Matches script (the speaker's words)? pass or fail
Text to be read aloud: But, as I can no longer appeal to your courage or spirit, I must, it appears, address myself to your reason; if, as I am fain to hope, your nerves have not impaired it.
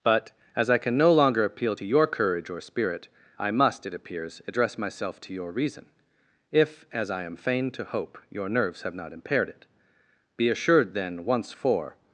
fail